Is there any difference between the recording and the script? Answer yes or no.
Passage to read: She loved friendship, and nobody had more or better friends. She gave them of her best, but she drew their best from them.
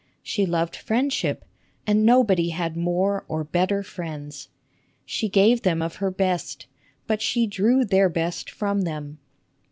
no